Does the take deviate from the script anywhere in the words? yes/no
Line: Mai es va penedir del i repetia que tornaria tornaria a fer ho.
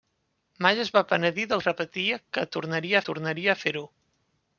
no